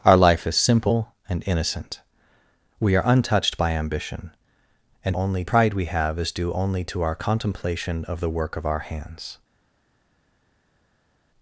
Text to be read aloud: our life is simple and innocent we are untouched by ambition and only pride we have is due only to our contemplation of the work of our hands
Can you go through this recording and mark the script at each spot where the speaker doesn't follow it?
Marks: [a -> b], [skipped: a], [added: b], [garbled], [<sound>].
our life is simple and innocent we are untouched by ambition and only pride we have is due only to our contemplation of the work of our hands